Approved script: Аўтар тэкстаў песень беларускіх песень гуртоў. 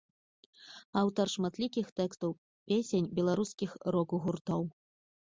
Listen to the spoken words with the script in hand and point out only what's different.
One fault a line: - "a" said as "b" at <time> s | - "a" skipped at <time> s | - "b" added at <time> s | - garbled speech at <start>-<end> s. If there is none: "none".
- "шматлікіх" added at 1.3 s
- "песень" said as "рок" at 4.0 s